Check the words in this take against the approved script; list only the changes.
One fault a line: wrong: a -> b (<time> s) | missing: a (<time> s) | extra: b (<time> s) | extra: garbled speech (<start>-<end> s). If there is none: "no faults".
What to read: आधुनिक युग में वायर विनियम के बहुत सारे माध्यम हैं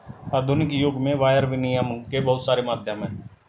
no faults